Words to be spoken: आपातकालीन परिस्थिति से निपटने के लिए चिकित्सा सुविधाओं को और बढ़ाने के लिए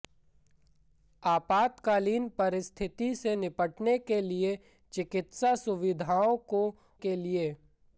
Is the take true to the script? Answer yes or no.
no